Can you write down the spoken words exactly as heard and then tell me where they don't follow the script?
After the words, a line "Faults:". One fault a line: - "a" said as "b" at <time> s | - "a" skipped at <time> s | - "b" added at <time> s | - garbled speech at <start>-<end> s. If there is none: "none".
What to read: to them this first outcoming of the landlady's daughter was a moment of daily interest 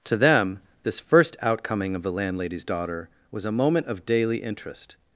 to them this first outcoming of the landlady's daughter was a moment of daily interest
Faults:
none